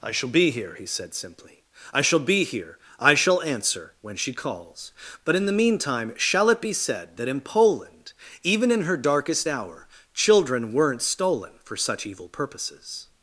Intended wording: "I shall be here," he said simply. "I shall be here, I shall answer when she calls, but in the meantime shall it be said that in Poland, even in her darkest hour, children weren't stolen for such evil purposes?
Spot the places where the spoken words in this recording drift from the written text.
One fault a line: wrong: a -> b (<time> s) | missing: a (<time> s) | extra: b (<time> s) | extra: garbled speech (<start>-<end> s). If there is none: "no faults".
no faults